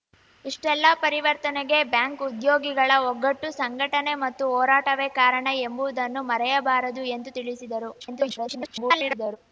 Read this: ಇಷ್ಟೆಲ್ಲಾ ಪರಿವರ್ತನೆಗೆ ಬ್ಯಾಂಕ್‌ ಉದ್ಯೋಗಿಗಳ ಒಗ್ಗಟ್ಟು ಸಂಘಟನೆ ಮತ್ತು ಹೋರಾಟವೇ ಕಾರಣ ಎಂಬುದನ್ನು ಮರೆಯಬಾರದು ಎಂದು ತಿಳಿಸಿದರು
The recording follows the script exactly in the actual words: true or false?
false